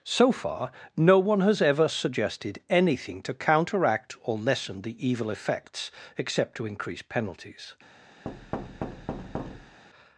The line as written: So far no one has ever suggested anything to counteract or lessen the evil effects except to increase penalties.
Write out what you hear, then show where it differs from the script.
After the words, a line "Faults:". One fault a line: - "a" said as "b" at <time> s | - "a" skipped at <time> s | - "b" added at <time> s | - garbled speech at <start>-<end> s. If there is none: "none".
So far no one has ever suggested anything to counteract or lessen the evil effects except to increase penalties.
Faults:
none